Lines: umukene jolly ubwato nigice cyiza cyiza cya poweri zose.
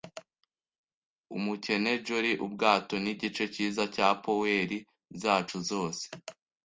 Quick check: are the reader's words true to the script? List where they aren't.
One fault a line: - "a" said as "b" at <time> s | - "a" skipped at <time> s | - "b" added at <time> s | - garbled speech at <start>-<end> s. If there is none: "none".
- "cyiza" skipped at 3.8 s
- "zacu" added at 5.2 s